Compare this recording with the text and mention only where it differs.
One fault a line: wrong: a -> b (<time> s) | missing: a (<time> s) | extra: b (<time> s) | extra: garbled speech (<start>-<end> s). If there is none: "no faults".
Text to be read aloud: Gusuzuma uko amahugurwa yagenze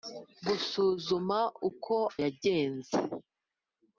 missing: amahugurwa (2.0 s)